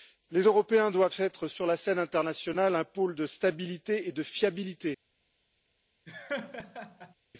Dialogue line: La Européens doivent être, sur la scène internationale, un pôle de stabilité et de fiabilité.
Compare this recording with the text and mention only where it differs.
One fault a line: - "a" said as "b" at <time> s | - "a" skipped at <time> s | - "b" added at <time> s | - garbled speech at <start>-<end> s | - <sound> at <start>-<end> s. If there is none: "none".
- "La" said as "Les" at 0.3 s
- laugh at 6.1-7.1 s